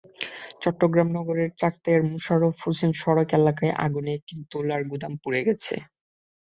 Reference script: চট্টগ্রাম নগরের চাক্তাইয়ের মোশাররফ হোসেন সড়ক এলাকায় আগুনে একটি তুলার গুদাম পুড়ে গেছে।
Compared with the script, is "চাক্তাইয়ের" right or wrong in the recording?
right